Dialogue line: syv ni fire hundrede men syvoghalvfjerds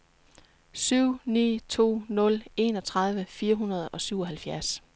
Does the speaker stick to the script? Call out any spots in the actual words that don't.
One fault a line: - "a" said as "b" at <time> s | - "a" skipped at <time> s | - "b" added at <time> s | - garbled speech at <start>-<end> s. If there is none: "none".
- "to nul enogtredive" added at 1.7 s
- "men" said as "og" at 3.9 s